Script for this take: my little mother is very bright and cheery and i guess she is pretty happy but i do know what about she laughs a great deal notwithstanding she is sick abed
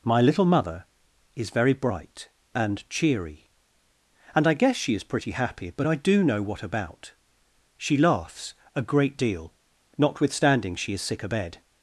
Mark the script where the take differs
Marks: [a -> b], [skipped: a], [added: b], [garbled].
my little mother is very bright and cheery and i guess she is pretty happy but i do know what about she laughs a great deal notwithstanding she is sick abed